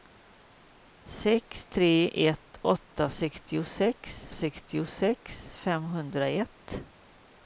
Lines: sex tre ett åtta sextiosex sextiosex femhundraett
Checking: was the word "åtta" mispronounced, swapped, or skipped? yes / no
no